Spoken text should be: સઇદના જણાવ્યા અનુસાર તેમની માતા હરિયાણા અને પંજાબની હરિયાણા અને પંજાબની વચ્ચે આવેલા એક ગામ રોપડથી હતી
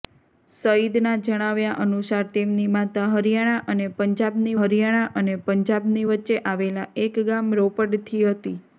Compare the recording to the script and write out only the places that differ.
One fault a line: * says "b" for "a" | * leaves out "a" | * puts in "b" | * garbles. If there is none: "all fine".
all fine